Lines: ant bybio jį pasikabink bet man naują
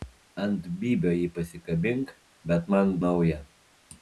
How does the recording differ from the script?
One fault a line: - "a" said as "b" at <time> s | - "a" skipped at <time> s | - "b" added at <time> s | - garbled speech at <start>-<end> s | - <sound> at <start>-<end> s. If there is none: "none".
none